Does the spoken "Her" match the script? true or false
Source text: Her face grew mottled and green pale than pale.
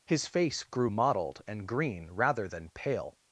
false